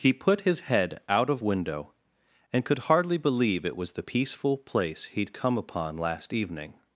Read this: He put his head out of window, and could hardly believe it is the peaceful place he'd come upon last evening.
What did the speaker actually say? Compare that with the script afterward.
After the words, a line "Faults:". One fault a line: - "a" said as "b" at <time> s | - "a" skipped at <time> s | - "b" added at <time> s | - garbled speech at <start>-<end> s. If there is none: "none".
He put his head out of window, and could hardly believe it was the peaceful place he'd come upon last evening.
Faults:
- "is" said as "was" at 3.7 s